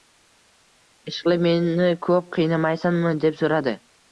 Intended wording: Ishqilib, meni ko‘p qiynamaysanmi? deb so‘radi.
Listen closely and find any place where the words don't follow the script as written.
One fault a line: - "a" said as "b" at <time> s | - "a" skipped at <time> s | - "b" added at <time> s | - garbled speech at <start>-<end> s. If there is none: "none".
none